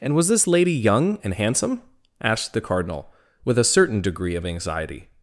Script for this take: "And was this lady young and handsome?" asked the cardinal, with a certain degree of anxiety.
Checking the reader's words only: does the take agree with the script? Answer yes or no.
yes